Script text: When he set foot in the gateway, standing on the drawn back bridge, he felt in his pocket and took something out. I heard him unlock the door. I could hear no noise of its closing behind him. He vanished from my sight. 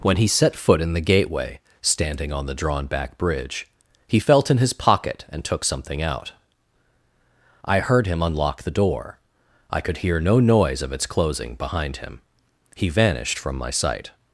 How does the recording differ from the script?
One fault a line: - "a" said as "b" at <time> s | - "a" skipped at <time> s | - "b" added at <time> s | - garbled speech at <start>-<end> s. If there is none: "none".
none